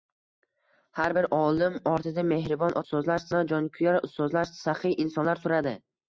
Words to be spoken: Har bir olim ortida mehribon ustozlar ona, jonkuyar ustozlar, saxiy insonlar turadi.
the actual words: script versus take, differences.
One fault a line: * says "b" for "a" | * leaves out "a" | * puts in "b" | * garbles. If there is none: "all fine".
all fine